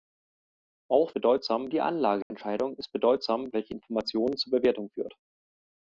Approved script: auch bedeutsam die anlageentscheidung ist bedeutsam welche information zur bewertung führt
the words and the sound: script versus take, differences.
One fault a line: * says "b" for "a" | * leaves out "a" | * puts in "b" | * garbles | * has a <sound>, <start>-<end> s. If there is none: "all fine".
* has a dropout, 2.2-2.3 s